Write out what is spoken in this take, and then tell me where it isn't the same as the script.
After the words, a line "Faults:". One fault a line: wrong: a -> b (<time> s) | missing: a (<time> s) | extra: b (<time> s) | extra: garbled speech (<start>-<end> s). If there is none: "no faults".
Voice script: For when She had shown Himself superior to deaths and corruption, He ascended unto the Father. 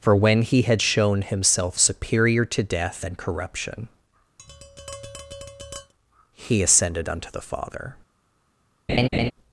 For when He had shown Himself superior to death and corruption, He ascended unto the Father.
Faults:
wrong: She -> He (0.4 s)
wrong: deaths -> death (2.6 s)